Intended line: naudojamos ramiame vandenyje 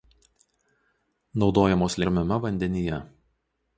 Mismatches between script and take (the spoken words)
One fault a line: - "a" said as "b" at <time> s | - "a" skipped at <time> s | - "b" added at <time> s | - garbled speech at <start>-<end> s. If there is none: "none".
none